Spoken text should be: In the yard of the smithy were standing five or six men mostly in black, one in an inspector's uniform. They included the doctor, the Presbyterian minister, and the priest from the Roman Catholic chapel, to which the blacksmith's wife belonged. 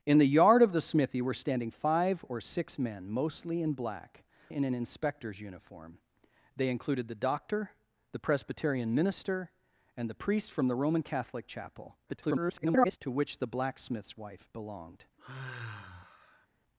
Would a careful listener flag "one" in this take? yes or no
yes